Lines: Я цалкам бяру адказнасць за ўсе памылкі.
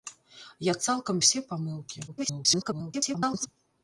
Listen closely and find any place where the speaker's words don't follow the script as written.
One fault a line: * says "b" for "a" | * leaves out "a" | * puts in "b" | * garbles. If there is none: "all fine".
* leaves out "бяру адказнасць за"
* garbles